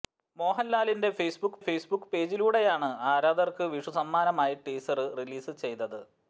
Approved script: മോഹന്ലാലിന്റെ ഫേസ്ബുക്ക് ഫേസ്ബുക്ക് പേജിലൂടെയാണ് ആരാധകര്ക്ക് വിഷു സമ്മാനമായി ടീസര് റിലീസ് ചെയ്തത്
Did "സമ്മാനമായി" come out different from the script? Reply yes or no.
no